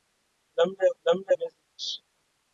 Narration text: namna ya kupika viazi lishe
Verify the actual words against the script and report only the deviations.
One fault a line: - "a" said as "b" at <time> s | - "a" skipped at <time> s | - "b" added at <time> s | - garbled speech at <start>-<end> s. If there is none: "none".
- "kupika" said as "namna" at 1.0 s